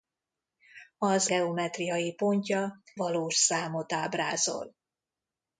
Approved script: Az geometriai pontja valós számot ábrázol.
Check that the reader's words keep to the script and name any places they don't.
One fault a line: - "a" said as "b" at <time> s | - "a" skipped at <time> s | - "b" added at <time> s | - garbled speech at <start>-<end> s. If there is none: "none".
none